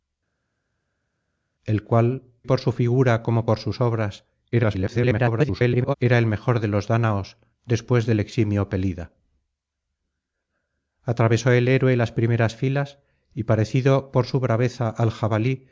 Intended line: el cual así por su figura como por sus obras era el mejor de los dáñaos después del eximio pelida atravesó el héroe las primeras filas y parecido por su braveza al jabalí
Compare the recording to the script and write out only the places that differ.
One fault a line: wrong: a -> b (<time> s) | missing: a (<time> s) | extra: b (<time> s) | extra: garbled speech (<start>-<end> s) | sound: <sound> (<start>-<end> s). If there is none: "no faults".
missing: así (2.2 s)
extra: garbled speech (4.5-5.9 s)